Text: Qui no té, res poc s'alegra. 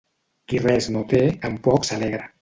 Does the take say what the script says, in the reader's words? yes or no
no